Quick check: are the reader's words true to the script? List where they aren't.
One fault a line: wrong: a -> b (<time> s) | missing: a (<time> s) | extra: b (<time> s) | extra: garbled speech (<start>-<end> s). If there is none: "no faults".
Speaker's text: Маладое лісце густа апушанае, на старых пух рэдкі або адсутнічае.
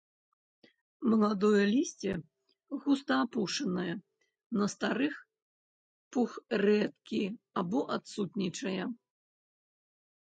no faults